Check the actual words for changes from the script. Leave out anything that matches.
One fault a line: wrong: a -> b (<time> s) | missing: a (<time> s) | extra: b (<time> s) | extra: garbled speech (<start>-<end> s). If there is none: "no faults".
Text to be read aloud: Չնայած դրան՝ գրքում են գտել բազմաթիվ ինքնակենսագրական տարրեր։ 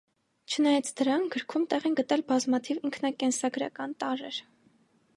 extra: տեղ (1.8 s)